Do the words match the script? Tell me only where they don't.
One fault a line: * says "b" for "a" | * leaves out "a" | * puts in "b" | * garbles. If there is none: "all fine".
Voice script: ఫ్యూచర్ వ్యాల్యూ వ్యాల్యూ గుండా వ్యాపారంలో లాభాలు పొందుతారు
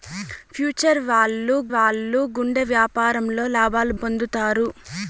all fine